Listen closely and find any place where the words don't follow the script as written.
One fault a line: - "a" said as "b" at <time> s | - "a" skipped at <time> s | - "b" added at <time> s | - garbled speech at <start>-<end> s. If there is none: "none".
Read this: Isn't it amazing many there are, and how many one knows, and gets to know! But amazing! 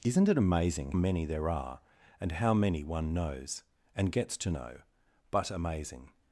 none